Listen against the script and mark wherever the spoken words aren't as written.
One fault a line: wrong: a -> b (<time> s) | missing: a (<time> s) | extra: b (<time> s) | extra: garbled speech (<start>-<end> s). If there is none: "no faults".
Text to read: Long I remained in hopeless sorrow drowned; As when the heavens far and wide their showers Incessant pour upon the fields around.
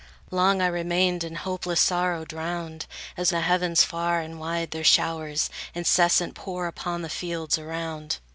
missing: when (3.3 s)